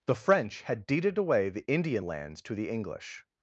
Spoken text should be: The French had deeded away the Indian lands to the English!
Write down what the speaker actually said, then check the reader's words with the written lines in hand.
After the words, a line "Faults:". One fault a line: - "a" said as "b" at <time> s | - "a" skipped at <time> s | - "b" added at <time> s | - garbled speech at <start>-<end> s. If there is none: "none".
The French had deeded away the Indian lands to the English!
Faults:
none